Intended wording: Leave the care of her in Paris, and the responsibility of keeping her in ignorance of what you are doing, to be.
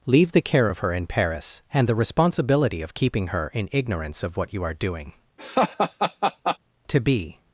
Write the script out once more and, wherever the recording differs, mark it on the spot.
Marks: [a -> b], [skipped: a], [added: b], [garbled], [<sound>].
Leave the care of her in Paris, and the responsibility of keeping her in ignorance of what you are doing, [laugh] to be.